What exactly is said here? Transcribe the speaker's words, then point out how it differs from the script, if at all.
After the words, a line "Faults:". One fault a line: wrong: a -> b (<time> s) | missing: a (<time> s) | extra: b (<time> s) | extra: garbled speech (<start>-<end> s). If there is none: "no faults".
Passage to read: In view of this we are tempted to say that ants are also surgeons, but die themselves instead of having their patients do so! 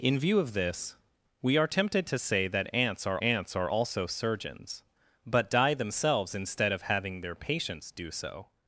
In view of this we are tempted to say that ants are ants are also surgeons, but die themselves instead of having their patients do so!
Faults:
extra: ants are (3.2 s)